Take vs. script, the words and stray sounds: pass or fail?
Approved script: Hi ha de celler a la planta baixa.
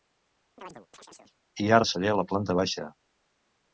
fail